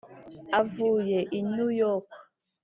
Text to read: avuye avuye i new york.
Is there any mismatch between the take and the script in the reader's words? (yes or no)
yes